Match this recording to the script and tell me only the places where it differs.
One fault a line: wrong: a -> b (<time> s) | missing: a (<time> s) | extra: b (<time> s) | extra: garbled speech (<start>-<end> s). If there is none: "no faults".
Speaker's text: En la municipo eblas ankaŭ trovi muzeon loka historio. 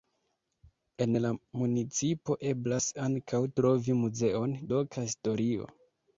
no faults